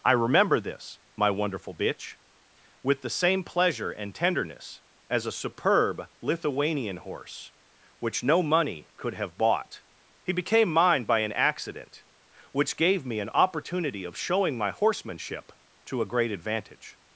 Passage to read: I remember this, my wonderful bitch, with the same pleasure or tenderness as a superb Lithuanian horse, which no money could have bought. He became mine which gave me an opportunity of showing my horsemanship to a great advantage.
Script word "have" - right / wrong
right